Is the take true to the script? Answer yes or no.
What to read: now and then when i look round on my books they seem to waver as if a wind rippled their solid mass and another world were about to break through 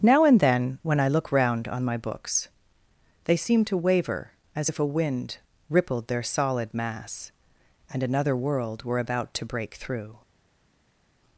yes